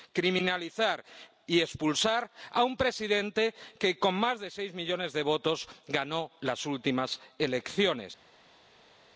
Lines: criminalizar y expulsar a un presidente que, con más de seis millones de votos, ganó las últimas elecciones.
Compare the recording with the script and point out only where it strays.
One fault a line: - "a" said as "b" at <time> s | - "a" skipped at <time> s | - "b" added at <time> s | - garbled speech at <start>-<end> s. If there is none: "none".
none